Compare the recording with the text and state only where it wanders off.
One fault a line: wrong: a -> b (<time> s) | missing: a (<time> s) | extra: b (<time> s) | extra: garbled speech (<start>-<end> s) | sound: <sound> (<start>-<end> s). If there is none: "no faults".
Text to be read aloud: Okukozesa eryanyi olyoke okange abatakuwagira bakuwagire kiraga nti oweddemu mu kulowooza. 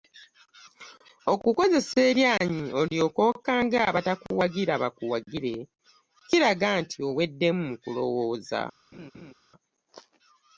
sound: laugh (8.9-9.3 s)